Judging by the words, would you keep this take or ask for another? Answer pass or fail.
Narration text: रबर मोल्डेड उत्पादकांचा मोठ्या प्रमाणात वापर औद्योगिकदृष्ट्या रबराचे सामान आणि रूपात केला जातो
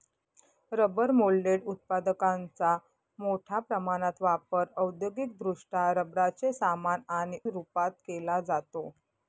pass